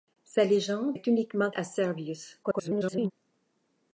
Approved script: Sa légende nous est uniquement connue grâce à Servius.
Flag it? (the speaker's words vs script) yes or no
yes